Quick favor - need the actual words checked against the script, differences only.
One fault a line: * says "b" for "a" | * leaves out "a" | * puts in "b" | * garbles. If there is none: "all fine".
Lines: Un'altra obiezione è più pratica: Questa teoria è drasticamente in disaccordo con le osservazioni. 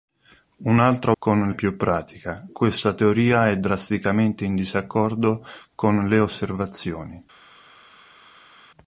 * says "con" for "obiezione"